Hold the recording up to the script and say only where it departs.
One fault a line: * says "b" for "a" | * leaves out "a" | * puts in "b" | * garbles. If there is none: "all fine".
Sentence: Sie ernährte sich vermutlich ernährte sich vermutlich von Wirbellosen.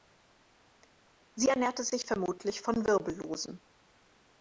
* leaves out "ernährte sich vermutlich"